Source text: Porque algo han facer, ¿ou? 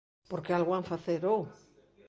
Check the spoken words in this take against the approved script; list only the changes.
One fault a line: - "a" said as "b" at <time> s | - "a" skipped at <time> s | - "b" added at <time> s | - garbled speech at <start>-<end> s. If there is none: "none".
none